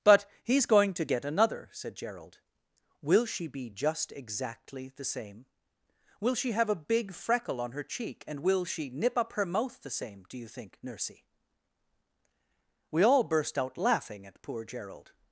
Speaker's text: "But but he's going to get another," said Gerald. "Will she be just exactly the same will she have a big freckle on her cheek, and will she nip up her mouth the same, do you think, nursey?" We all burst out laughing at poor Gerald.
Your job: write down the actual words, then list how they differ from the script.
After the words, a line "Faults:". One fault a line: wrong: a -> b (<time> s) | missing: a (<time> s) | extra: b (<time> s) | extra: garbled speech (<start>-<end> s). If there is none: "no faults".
"But he's going to get another," said Gerald. "Will she be just exactly the same will she have a big freckle on her cheek, and will she nip up her mouth the same, do you think, nursey?" We all burst out laughing at poor Gerald.
Faults:
missing: but (0.2 s)